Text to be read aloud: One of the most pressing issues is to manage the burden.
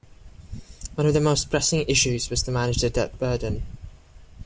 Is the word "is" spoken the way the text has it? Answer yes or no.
no